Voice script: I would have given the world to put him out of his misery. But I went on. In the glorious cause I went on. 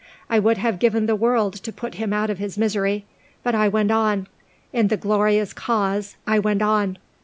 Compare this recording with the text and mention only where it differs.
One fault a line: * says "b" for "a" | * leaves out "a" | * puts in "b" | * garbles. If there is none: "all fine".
all fine